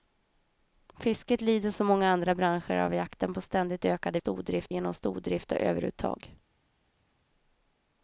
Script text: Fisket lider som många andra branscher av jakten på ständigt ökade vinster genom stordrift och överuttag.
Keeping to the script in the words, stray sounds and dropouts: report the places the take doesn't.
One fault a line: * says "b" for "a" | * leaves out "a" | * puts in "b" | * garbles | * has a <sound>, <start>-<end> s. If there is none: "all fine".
* says "stordrift" for "vinster"